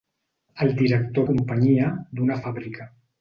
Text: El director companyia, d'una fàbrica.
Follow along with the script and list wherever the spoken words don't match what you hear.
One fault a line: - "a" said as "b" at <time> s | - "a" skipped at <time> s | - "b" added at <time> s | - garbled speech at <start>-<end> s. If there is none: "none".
none